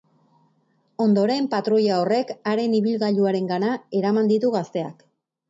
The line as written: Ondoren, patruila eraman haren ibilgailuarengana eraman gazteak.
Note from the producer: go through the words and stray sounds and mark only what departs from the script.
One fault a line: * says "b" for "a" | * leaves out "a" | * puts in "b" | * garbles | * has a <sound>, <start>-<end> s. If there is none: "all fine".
* says "horrek" for "eraman"
* puts in "ditu"